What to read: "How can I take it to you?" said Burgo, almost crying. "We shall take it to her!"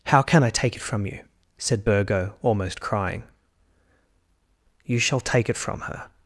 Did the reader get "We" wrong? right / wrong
wrong